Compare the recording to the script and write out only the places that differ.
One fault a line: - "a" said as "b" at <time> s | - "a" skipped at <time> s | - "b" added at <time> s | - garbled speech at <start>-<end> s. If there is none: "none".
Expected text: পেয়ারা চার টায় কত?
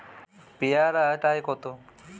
- "চার" skipped at 1.1 s